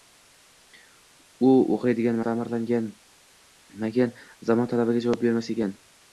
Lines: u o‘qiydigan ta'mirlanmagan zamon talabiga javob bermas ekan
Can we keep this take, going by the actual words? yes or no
yes